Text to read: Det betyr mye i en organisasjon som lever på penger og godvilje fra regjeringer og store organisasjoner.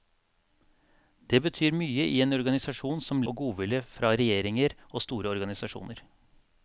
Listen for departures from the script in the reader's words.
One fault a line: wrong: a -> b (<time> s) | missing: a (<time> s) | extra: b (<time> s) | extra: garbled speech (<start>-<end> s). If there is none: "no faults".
missing: lever på penger (3.2 s)